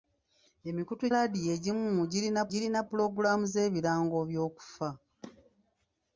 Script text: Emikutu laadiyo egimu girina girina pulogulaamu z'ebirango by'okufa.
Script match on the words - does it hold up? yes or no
yes